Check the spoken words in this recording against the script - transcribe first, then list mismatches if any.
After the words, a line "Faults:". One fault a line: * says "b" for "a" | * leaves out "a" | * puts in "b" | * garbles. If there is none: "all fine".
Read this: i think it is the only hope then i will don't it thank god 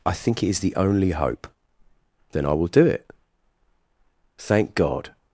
i think it is the only hope then i will do it thank god
Faults:
* says "do" for "don't"